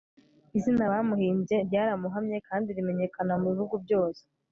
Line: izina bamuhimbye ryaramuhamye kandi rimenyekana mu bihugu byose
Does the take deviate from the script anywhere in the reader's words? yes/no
no